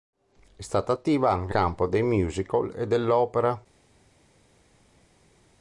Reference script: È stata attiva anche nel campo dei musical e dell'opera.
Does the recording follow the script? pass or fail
fail